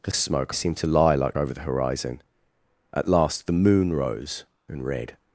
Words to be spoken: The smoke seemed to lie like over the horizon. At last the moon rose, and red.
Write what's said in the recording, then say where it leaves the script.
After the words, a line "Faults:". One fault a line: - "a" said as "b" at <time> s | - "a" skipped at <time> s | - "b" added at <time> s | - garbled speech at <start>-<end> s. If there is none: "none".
The smoke seemed to lie like over the horizon. At last the moon rose, and red.
Faults:
none